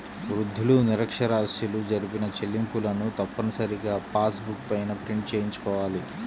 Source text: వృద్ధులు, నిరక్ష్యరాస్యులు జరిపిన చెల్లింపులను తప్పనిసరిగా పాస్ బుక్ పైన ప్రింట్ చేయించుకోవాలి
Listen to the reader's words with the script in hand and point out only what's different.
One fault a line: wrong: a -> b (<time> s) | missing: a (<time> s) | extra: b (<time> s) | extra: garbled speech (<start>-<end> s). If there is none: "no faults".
no faults